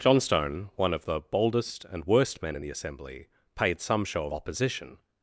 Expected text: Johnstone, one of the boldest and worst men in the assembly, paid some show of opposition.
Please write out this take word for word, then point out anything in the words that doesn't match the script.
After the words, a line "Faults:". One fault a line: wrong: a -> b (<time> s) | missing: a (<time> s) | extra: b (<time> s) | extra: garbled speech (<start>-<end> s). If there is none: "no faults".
Johnstone, one of the boldest and worst men in the assembly, paid some show of opposition.
Faults:
no faults